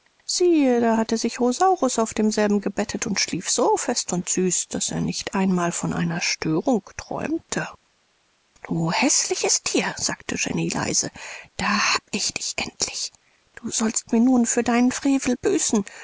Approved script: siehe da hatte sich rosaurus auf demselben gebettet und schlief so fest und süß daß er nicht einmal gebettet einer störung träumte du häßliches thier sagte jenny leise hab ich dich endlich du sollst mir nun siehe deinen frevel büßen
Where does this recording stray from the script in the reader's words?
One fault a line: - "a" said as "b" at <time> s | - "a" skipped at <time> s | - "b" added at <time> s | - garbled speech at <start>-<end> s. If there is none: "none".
- "gebettet" said as "von" at 5.7 s
- "da" added at 11.6 s
- "siehe" said as "für" at 14.5 s